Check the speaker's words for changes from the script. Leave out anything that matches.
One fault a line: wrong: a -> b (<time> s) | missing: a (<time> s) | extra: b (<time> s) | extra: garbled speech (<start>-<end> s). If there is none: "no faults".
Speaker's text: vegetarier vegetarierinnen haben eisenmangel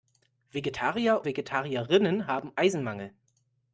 no faults